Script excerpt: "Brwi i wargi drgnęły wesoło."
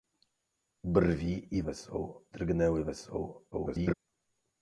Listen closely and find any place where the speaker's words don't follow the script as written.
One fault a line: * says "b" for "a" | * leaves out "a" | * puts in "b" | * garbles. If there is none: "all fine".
* says "wesoło" for "wargi"
* garbles